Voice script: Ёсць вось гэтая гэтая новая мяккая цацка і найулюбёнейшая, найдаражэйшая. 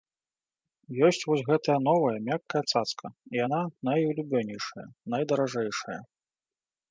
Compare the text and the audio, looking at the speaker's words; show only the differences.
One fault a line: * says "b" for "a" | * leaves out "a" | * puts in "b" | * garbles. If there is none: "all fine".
* leaves out "гэтая"
* puts in "яна"